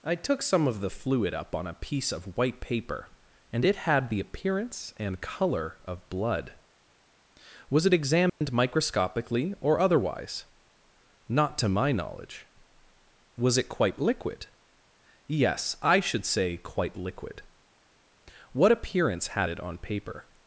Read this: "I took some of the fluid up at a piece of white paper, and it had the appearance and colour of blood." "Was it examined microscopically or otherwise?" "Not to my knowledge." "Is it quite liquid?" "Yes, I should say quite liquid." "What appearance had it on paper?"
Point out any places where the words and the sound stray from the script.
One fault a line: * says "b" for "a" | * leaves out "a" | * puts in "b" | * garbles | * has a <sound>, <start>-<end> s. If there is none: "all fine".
* says "on" for "at"
* has a dropout, 8.3-8.4 s
* says "Was" for "Is"